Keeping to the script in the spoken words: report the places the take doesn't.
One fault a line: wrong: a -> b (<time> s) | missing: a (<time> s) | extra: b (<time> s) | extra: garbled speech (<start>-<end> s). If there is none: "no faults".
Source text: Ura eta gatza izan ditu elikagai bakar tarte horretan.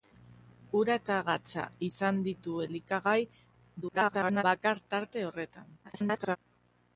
extra: garbled speech (3.8-4.4 s)
extra: garbled speech (5.8-6.4 s)